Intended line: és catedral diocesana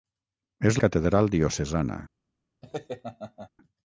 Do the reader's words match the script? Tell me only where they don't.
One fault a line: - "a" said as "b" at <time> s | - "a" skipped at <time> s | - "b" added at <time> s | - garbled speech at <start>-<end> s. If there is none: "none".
none